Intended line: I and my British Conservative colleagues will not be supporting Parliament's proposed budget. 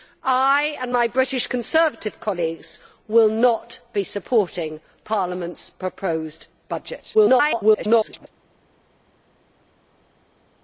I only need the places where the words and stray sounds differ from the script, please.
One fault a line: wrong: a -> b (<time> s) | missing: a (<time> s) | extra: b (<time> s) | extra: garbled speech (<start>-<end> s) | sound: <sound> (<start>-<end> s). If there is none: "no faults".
extra: garbled speech (7.1-8.3 s)